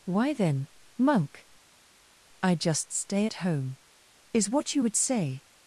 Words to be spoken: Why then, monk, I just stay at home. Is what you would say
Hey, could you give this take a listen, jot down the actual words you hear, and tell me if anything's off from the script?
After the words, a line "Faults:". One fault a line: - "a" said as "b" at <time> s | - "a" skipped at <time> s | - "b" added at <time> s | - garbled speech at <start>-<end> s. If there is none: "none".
Why then, monk, I just stay at home. Is what you would say
Faults:
none